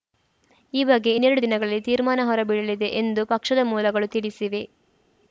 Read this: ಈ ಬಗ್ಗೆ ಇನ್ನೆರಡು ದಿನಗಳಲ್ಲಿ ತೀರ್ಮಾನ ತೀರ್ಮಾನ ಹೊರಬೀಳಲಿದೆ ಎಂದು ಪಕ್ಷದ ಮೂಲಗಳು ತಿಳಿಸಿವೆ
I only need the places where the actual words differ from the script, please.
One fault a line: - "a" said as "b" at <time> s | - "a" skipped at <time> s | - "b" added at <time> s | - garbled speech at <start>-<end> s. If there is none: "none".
- "ತೀರ್ಮಾನ" skipped at 2.2 s